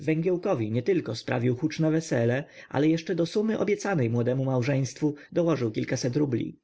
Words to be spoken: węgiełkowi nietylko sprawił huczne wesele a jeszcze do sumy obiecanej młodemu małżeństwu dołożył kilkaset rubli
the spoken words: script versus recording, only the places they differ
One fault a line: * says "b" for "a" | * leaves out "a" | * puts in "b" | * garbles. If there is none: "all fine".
* says "ale" for "a"